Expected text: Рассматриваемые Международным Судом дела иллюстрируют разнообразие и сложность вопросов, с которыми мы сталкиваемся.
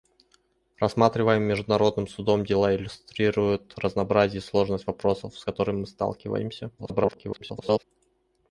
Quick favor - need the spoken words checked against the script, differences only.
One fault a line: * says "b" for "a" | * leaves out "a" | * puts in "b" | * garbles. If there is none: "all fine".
* garbles